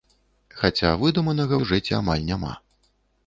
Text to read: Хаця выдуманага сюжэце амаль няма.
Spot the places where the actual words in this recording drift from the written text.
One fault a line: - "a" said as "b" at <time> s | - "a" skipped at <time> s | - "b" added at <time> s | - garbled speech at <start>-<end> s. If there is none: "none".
none